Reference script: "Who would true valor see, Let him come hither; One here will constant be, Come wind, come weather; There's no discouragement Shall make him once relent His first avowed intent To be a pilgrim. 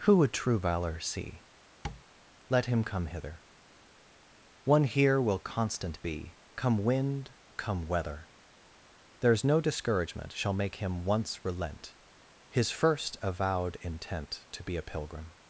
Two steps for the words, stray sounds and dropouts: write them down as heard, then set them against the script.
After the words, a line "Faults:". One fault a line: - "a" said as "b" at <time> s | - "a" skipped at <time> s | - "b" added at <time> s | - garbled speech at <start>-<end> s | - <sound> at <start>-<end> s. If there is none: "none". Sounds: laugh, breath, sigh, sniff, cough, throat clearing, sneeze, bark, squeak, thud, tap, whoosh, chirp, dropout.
"Who would true valor see, Let him come hither; One here will constant be, Come wind, come weather; There's no discouragement Shall make him once relent His first avowed intent To be a pilgrim.
Faults:
- tap at 1.8-2.0 s